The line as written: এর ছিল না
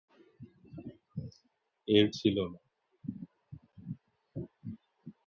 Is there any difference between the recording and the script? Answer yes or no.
no